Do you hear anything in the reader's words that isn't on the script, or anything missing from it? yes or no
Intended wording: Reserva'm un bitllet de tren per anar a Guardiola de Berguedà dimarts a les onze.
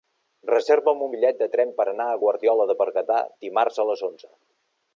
no